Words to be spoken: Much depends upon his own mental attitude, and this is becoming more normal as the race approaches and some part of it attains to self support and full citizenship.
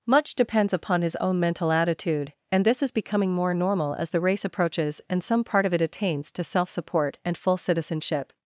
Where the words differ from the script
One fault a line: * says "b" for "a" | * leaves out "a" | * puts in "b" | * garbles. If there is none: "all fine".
all fine